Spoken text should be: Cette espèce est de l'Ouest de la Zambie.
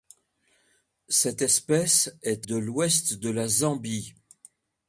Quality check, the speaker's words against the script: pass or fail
pass